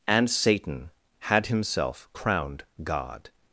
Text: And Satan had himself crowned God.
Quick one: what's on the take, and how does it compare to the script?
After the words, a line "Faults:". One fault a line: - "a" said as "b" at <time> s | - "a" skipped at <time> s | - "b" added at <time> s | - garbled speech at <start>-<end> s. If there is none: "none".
And Satan had himself crowned God.
Faults:
none